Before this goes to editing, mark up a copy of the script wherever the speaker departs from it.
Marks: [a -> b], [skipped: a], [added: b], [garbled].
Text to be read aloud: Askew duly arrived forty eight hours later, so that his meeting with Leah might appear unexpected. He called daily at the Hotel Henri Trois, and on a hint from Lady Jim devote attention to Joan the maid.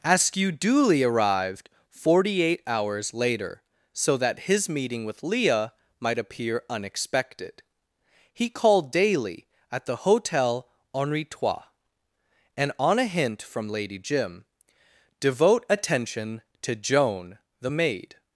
Askew duly arrived forty eight hours later, so that his meeting with Leah might appear unexpected. He called daily at the Hotel Henri Trois, and on a hint from Lady Jim devote attention to Joan the maid.